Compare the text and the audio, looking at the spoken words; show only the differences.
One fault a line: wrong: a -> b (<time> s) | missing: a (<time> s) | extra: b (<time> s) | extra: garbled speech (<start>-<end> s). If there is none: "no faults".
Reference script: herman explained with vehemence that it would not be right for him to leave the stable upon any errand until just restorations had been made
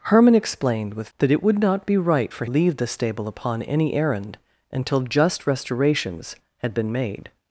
missing: vehemence (1.1 s)
missing: him to (2.5 s)